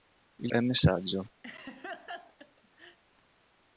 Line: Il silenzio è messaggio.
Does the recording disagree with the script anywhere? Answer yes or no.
yes